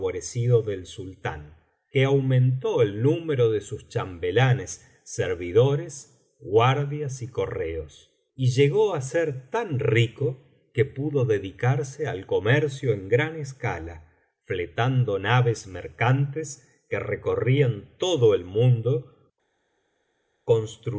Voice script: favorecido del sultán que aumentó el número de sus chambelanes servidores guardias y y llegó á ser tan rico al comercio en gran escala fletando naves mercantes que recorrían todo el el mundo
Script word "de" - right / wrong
right